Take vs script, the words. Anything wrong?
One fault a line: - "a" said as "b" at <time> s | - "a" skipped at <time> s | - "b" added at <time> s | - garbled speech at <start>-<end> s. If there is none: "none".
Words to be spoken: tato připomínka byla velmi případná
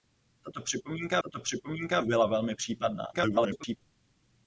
- "tato připomínka" added at 1.2 s
- garbled speech at 3.1-3.8 s